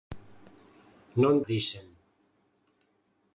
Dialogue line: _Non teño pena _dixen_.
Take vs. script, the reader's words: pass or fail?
fail